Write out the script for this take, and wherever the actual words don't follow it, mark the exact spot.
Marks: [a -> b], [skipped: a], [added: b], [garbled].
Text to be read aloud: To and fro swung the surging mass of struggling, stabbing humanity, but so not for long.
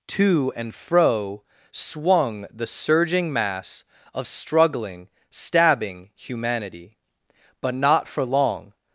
To and fro swung the surging mass of struggling, stabbing humanity, but [skipped: so] not for long.